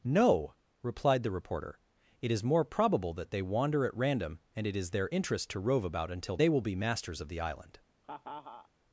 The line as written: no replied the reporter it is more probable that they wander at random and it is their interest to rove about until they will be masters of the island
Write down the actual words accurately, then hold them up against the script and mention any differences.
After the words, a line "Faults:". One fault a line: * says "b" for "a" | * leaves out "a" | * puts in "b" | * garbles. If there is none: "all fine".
no replied the reporter it is more probable that they wander at random and it is their interest to rove about until they will be masters of the island
Faults:
all fine